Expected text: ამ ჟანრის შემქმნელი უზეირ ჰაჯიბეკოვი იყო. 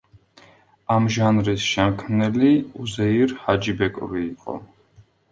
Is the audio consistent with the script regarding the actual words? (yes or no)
yes